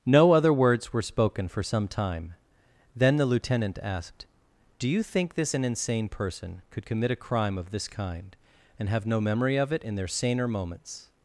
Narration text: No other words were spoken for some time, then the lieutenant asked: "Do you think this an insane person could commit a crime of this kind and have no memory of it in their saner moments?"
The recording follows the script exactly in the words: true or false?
true